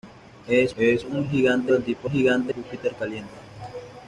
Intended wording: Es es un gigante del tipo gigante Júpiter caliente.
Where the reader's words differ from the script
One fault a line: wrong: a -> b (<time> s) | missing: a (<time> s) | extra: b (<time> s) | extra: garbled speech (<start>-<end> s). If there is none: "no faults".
no faults